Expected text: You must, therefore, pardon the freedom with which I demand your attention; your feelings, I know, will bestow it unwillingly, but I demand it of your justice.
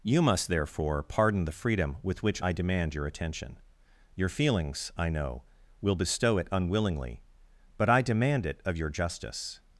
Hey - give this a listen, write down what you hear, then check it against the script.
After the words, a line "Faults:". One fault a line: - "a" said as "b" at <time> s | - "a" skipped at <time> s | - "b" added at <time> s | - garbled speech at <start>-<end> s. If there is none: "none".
You must, therefore, pardon the freedom with which I demand your attention; your feelings, I know, will bestow it unwillingly, but I demand it of your justice.
Faults:
none